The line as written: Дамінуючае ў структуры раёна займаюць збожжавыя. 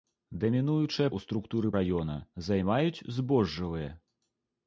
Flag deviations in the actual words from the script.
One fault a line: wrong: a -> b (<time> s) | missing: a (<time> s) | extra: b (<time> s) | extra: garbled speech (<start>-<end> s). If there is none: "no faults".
no faults